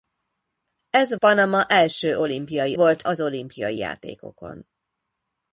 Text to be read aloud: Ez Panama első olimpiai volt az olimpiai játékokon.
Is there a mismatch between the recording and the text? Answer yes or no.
no